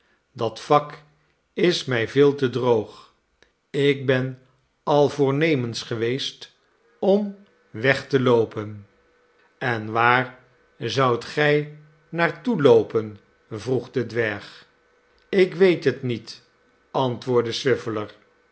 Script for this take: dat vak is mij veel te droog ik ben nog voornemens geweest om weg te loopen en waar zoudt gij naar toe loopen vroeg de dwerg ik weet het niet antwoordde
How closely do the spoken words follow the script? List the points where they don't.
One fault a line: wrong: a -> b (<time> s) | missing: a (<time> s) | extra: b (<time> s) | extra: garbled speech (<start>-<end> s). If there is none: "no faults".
wrong: nog -> al (4.8 s)